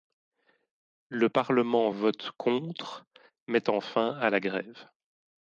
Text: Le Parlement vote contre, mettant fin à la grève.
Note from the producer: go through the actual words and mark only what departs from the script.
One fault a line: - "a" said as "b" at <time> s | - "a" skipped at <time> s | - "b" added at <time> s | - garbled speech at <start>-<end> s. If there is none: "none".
none